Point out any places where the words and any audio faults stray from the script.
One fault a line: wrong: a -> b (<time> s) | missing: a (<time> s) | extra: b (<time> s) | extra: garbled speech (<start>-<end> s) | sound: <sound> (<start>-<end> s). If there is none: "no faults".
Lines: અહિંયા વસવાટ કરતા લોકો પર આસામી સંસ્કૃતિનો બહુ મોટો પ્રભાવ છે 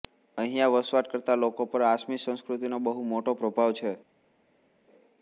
no faults